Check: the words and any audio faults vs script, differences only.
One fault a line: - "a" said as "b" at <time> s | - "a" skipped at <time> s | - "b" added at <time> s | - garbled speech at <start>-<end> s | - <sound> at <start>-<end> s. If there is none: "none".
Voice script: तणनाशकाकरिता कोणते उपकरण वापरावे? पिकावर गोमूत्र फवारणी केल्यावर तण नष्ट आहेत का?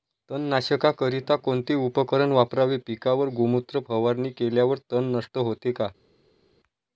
- "आहेत" said as "होते" at 5.4 s